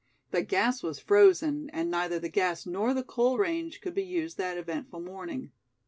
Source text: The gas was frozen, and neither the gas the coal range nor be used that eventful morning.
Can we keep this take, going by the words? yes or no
no